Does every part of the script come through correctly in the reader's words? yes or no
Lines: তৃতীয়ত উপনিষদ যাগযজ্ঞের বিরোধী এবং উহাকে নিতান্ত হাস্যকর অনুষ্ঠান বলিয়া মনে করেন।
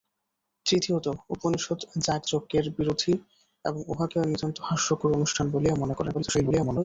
no